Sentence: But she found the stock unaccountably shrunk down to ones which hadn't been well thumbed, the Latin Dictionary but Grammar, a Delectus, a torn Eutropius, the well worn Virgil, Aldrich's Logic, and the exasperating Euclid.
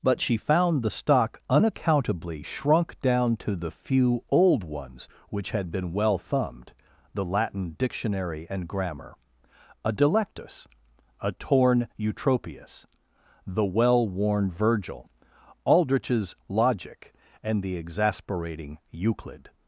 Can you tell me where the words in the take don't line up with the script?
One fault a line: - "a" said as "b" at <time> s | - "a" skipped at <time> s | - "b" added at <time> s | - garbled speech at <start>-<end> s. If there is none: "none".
- "the few old" added at 3.5 s
- "hadn't" said as "had" at 5.5 s
- "but" said as "and" at 8.5 s